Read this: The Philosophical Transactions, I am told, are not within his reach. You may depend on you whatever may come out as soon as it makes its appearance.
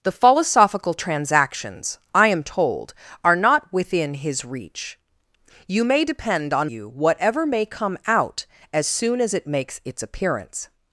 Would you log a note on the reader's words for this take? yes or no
no